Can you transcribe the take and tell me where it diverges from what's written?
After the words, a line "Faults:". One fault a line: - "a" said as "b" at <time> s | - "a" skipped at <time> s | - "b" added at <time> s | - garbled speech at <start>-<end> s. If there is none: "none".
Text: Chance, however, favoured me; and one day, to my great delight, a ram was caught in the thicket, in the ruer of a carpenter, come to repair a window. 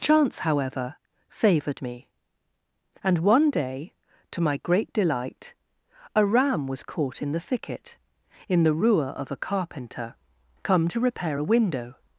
Chance, however, favoured me; and one day, to my great delight, a ram was caught in the thicket, in the ruer of a carpenter, come to repair a window.
Faults:
none